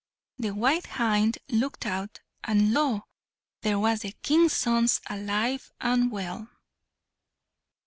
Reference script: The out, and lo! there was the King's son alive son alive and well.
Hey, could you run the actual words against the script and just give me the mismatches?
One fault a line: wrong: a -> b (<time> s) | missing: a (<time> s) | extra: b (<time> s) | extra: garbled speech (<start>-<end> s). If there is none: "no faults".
extra: white hind looked (0.6 s)
missing: son alive (5.7 s)